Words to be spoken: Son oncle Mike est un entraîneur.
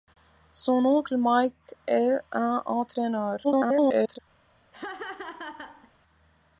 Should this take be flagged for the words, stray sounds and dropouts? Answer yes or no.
yes